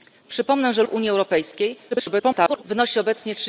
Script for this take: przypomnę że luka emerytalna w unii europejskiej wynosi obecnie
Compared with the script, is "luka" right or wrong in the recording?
wrong